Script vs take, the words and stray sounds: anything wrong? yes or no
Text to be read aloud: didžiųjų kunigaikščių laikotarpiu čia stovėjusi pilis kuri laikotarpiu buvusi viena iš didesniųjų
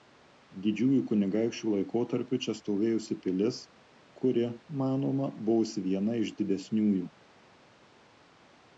yes